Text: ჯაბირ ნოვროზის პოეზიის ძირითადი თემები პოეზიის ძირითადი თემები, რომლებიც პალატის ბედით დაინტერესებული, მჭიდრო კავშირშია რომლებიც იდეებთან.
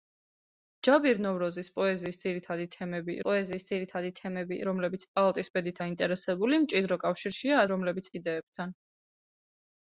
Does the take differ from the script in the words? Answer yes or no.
no